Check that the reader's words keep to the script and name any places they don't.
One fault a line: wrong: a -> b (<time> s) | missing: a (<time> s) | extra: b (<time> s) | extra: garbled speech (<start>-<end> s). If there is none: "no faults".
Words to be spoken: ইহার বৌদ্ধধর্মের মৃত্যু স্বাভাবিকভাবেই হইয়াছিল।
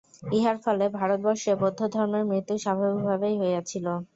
extra: ফলে ভারতবর্ষে (0.6 s)